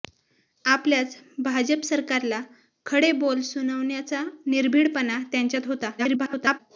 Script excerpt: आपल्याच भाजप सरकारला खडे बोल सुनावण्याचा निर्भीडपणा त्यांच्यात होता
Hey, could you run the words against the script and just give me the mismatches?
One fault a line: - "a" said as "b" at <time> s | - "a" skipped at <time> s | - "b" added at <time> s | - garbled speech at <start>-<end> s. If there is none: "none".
- garbled speech at 6.0-6.6 s